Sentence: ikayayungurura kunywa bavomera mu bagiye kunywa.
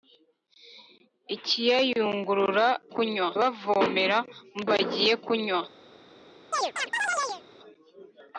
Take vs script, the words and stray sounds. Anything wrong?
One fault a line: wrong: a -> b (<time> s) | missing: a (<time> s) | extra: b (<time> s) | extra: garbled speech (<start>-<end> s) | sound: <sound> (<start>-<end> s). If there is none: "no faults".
sound: chirp (6.5-7.4 s)